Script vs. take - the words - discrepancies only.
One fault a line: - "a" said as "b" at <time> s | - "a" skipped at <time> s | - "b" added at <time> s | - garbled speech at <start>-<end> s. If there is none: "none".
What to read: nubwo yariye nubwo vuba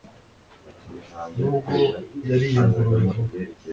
- "nubwo" said as "ingurube" at 2.6 s